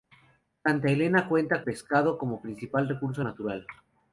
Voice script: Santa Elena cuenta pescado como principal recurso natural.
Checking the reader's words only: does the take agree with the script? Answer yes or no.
yes